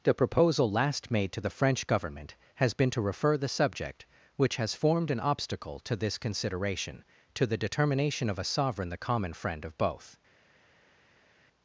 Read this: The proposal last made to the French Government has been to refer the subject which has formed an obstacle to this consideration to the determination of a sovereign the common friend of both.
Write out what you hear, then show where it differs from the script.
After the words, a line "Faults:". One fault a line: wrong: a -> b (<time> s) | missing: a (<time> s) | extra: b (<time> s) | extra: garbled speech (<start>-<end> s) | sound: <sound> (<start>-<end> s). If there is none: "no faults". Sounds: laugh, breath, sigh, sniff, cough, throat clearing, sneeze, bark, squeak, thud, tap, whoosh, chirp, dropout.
The proposal last made to the French Government has been to refer the subject which has formed an obstacle to this consideration to the determination of a sovereign the common friend of both.
Faults:
no faults